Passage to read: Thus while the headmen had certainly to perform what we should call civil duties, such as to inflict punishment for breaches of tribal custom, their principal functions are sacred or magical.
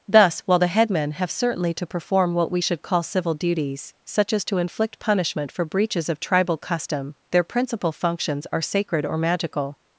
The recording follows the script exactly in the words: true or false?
false